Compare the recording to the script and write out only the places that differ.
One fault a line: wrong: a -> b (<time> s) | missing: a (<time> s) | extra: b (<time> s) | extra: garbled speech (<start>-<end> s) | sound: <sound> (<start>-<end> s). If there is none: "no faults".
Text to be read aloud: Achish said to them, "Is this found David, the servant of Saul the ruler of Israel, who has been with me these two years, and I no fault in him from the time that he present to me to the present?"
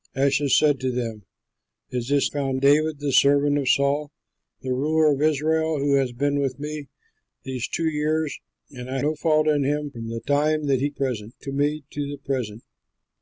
no faults